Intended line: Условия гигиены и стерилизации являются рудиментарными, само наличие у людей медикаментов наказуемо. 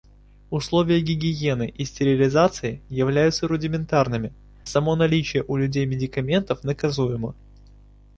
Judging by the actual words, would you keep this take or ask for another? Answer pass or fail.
pass